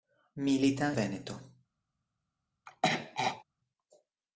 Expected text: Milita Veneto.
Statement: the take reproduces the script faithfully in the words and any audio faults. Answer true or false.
false